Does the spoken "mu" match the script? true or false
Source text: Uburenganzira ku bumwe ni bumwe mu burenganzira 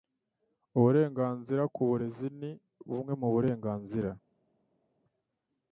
true